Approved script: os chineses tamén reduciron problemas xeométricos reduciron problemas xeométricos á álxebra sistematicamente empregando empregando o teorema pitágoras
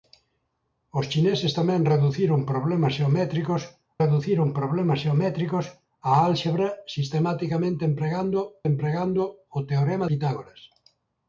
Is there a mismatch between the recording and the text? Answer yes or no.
no